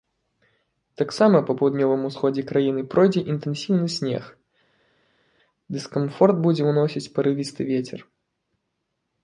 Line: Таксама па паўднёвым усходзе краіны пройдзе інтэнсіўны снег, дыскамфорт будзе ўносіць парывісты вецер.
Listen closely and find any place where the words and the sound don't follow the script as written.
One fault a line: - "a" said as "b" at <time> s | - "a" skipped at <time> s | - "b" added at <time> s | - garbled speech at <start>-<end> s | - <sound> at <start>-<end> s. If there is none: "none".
none